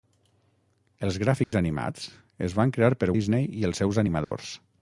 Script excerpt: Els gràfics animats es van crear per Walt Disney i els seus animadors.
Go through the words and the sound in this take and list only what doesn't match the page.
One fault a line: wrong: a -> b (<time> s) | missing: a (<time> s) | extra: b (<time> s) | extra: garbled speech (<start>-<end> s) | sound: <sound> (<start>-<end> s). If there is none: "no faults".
sound: dropout (1.4-1.5 s)
missing: Walt (3.1 s)
sound: dropout (4.2-4.3 s)